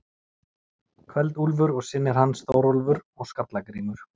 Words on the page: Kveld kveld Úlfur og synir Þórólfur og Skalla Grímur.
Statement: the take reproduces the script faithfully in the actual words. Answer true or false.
false